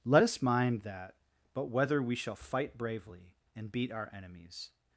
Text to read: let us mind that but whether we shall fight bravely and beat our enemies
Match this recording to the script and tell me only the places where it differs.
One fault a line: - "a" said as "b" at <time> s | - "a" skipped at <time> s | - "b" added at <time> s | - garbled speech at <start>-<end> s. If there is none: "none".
none